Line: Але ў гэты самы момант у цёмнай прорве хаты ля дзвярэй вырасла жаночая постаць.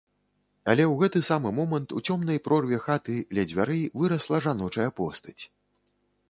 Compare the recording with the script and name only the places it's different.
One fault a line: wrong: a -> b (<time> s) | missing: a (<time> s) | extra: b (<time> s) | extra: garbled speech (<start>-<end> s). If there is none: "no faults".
no faults